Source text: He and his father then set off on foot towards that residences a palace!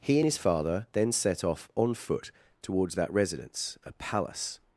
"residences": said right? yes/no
no